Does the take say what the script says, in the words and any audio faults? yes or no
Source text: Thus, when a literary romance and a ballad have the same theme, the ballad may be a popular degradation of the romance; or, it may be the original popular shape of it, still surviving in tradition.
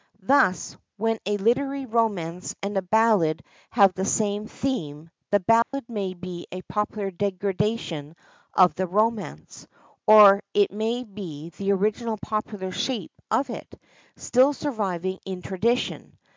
no